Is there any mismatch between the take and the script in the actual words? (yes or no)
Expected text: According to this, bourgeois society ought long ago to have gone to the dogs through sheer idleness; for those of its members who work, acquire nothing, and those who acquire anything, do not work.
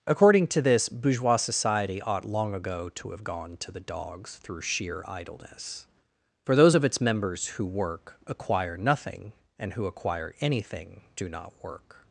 yes